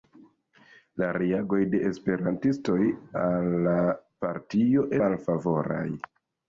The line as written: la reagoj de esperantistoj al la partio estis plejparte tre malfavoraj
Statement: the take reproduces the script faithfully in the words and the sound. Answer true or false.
false